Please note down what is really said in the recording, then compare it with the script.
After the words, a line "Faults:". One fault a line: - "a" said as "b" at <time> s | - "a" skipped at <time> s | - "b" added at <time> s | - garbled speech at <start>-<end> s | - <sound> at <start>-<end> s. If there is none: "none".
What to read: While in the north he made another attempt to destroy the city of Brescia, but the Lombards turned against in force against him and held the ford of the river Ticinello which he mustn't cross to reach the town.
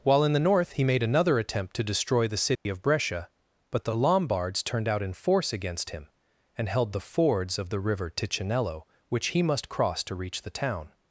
While in the north he made another attempt to destroy the city of Brescia, but the Lombards turned out in force against him and held the fords of the river Ticinello which he must cross to reach the town.
Faults:
- dropout at 2.6-2.7 s
- "against" said as "out" at 4.9 s
- "ford" said as "fords" at 7.0 s
- "mustn't" said as "must" at 9.4 s